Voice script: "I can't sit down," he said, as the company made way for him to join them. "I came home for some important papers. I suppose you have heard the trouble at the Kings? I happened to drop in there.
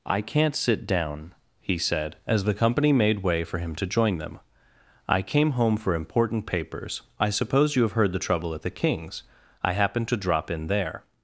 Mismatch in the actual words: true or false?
true